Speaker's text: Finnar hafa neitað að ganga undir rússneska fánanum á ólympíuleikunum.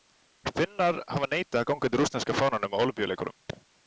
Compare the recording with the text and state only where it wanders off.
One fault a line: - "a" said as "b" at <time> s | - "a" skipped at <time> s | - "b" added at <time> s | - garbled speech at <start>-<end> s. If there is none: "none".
none